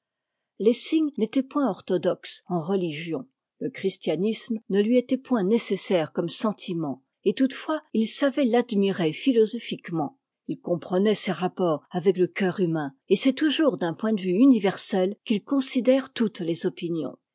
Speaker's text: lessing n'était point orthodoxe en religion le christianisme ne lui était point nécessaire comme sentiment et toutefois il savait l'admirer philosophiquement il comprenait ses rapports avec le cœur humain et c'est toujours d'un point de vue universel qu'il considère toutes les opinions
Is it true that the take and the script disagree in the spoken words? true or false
false